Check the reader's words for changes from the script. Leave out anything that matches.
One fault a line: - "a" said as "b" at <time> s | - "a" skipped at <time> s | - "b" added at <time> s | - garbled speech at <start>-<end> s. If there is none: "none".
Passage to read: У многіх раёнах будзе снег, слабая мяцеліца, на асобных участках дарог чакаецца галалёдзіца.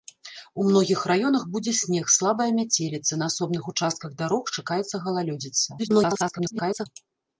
- garbled speech at 5.8-6.9 s